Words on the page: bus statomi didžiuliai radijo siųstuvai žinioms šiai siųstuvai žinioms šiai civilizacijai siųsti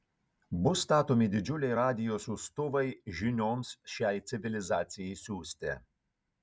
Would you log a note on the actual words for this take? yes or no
yes